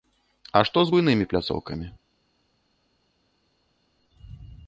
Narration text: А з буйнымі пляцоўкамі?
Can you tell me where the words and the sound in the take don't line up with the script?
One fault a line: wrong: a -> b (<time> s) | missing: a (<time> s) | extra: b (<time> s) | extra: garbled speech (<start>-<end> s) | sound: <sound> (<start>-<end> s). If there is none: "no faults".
extra: што (0.7 s)